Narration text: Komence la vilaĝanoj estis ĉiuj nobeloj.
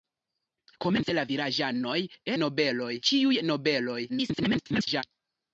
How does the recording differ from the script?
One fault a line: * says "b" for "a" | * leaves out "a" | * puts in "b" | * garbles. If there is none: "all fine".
* says "nobeloj" for "estis"
* garbles